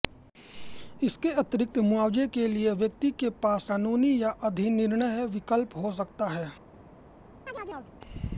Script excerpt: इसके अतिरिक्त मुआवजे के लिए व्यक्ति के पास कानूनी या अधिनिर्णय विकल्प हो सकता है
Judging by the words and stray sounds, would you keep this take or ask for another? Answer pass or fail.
fail